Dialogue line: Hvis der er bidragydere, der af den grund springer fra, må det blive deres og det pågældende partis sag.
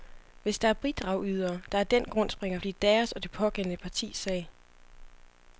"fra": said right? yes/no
no